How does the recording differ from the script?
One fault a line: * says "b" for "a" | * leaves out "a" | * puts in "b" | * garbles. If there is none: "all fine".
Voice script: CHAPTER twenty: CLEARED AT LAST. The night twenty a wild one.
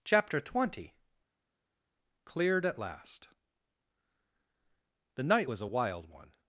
* says "was" for "twenty"